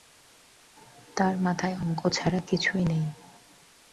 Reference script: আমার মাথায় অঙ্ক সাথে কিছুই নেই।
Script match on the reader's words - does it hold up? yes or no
no